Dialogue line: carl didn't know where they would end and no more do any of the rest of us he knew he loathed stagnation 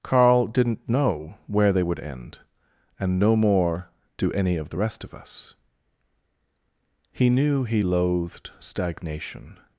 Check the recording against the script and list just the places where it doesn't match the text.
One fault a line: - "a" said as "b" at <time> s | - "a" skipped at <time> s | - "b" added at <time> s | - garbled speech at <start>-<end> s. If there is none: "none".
none